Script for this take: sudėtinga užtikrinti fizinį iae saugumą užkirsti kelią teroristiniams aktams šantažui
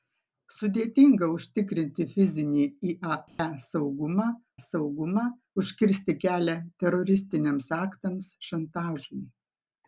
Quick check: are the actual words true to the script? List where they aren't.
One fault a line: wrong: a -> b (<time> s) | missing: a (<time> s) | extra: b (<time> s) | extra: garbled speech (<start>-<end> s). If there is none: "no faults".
extra: saugumą (4.6 s)